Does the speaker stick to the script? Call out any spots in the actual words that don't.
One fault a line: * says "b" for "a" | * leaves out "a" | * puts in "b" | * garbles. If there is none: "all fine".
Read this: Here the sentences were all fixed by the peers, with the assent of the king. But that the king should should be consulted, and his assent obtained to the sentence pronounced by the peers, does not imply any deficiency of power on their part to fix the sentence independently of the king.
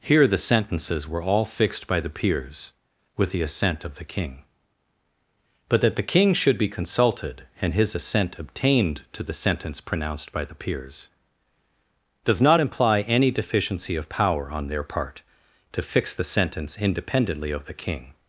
* leaves out "should"